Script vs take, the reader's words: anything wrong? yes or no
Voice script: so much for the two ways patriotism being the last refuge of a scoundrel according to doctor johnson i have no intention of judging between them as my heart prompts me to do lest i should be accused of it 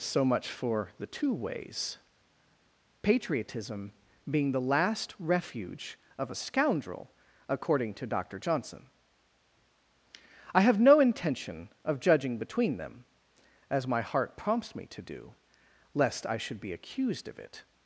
no